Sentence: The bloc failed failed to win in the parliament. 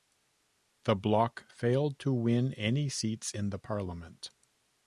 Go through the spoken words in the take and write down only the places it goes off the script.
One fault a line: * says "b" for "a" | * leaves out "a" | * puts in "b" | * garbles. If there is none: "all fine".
* leaves out "failed"
* puts in "any seats"